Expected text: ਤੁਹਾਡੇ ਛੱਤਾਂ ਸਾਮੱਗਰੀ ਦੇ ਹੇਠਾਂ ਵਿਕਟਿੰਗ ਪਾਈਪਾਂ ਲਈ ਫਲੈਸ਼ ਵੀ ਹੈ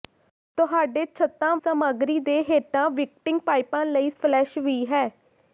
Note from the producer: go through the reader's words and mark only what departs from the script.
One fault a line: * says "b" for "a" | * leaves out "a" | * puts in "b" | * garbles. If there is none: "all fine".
all fine